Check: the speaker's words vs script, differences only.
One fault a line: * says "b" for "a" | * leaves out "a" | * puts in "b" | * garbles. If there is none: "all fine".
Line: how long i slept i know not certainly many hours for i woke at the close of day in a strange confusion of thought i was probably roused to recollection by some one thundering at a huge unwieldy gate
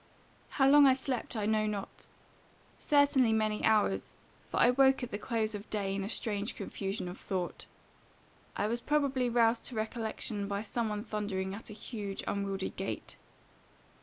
all fine